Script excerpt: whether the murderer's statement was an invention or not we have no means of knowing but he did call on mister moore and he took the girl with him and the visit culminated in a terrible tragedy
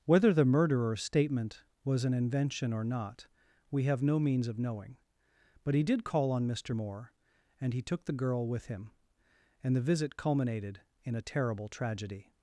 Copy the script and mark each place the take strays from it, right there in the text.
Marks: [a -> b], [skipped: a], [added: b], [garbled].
whether the murderer's statement was an invention or not we have no means of knowing but he did call on mister moore and he took the girl with him and the visit culminated in a terrible tragedy